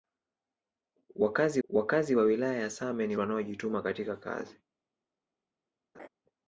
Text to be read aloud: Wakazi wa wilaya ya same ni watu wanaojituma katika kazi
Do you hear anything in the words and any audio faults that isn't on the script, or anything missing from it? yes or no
yes